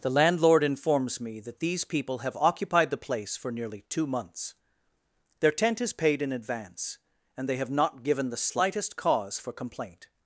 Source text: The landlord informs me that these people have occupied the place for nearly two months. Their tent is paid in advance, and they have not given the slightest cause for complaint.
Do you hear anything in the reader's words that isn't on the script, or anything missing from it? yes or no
no